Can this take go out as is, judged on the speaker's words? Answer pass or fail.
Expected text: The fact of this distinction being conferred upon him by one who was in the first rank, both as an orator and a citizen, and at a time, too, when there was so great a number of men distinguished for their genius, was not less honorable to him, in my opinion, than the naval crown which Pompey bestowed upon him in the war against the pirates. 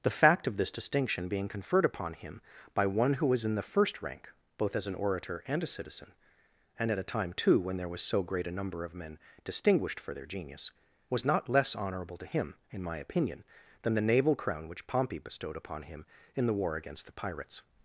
pass